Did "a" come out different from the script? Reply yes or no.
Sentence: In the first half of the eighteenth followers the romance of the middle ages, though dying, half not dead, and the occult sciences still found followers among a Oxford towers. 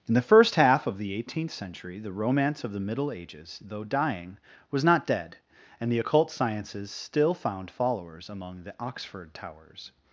yes